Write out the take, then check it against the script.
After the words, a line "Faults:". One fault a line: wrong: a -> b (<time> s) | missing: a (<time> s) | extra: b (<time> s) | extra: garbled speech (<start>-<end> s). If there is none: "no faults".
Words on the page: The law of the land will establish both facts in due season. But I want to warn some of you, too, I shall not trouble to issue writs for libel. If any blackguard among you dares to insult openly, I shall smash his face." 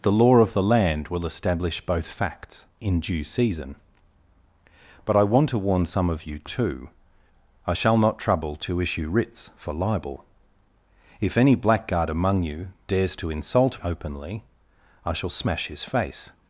The law of the land will establish both facts in due season. But I want to warn some of you, too, I shall not trouble to issue writs for libel. If any blackguard among you dares to insult openly, I shall smash his face."
Faults:
no faults